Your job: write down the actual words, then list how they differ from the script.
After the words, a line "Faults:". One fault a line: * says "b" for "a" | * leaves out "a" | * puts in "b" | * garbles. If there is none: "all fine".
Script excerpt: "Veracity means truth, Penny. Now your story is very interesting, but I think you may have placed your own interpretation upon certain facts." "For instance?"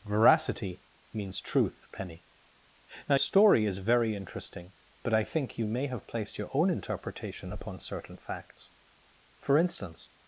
"Veracity means truth, Penny. Now story is very interesting, but I think you may have placed your own interpretation upon certain facts." "For instance?"
Faults:
* leaves out "your"